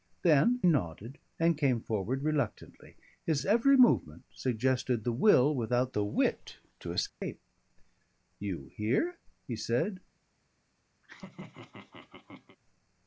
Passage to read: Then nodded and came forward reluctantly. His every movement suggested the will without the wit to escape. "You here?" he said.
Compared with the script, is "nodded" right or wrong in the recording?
right